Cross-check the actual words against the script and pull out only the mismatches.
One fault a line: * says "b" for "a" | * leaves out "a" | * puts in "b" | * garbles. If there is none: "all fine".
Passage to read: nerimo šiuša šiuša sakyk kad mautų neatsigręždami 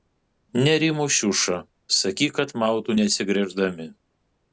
* leaves out "šiuša"